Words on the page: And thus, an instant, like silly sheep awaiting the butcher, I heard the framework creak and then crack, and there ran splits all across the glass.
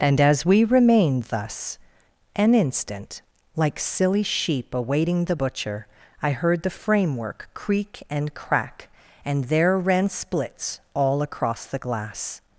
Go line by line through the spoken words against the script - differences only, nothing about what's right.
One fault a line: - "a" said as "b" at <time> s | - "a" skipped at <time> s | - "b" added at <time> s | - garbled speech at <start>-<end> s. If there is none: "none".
- "as we remained" added at 0.2 s
- "then" skipped at 8.3 s